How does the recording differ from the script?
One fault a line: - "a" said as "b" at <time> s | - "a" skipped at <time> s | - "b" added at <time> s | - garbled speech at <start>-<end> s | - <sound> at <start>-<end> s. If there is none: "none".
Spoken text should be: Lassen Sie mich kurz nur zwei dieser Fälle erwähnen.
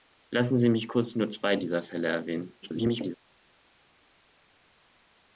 - garbled speech at 2.6-3.2 s